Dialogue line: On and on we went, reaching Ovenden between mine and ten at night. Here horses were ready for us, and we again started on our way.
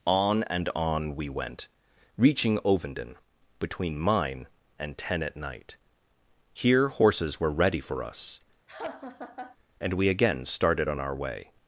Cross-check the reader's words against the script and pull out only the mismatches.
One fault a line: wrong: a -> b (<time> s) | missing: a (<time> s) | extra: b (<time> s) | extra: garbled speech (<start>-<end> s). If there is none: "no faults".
no faults